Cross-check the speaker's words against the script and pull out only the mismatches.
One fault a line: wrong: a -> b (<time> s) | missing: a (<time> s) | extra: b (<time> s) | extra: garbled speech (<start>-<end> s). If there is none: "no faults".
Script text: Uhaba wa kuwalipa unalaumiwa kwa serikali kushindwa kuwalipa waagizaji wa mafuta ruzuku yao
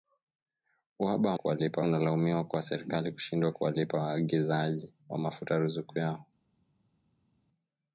no faults